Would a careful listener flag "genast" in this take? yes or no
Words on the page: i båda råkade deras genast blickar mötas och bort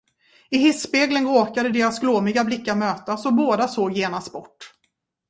yes